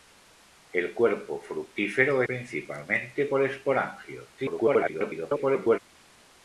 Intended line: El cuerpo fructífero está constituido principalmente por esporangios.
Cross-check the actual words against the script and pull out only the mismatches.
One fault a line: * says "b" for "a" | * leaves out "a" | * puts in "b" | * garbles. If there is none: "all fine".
* leaves out "está constituido"
* garbles